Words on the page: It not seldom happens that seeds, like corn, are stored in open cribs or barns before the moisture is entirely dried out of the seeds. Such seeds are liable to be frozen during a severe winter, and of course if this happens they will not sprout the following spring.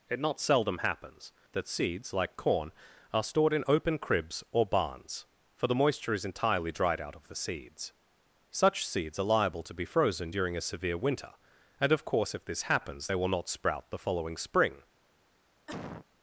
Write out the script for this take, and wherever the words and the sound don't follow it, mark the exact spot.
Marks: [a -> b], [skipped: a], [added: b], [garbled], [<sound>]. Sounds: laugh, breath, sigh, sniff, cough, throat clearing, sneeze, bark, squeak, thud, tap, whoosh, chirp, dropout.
It not seldom happens that seeds, like corn, are stored in open cribs or barns [before -> for] the moisture is entirely dried out of the seeds. Such seeds are liable to be frozen during a severe winter, and of course if this happens they will not sprout the following spring. [cough]